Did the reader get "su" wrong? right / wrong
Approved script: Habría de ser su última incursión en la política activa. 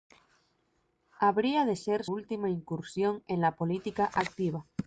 wrong